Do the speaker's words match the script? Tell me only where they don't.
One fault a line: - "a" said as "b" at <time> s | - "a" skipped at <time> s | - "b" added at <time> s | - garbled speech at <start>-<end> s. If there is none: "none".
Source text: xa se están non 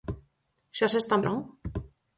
none